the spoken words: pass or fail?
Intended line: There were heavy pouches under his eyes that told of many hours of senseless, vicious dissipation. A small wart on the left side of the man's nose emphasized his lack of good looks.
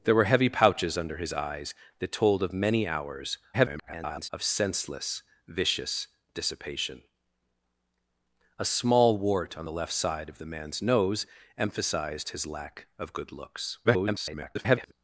fail